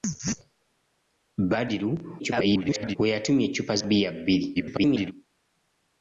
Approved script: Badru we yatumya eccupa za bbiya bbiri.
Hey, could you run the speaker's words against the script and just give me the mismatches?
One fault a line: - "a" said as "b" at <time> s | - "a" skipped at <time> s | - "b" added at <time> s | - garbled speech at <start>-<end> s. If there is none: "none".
- garbled speech at 2.2-3.0 s
- "za" skipped at 3.7 s
- garbled speech at 4.6-5.1 s